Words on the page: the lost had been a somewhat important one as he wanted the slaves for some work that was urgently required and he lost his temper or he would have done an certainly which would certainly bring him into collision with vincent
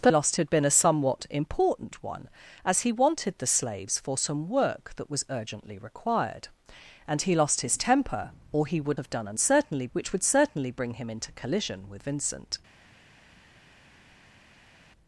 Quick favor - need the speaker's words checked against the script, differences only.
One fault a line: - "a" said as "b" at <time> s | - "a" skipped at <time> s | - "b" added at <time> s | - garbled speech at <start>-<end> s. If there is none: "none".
none